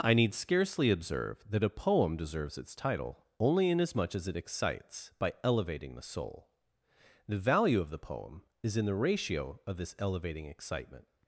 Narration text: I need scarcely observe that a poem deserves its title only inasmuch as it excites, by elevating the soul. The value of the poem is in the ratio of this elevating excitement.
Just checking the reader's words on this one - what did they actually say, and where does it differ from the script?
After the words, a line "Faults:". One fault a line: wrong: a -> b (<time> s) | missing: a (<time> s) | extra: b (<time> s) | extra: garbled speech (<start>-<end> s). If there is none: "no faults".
I need scarcely observe that a poem deserves its title only inasmuch as it excites, by elevating the soul. The value of the poem is in the ratio of this elevating excitement.
Faults:
no faults